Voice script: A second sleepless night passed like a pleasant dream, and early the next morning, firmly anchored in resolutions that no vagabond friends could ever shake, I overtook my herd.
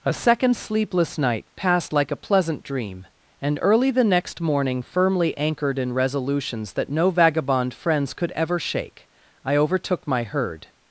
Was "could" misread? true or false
false